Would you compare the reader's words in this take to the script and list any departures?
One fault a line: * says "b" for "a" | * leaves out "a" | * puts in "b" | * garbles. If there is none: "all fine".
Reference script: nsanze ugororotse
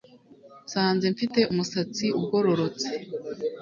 * puts in "mfite umusatsi"